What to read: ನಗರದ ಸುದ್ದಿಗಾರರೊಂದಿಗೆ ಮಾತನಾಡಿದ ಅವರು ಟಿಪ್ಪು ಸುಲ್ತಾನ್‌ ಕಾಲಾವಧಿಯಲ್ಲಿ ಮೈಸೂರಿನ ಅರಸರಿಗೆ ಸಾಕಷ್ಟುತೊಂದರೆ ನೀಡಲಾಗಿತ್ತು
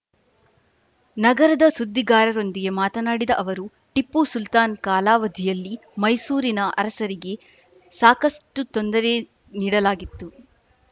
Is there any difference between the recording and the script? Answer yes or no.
no